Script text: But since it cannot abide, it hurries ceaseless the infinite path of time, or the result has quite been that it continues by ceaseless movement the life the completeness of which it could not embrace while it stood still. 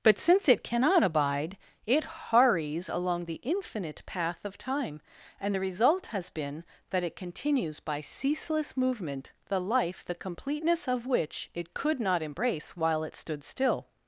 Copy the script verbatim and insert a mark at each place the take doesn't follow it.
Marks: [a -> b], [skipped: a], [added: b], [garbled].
But since it cannot abide, it hurries [ceaseless -> along] the infinite path of time, [or -> and] the result has [skipped: quite] been that it continues by ceaseless movement the life the completeness of which it could not embrace while it stood still.